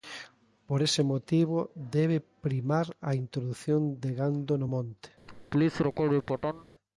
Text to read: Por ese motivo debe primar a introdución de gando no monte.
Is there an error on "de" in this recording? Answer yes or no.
no